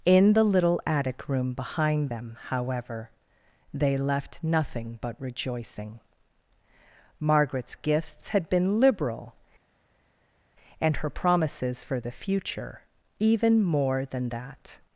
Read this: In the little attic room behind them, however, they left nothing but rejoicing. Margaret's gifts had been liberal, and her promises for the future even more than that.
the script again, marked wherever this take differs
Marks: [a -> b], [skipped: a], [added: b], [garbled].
In the little attic room behind them, however, they left nothing but rejoicing. Margaret's gifts had been liberal, and her promises for the future even more than that.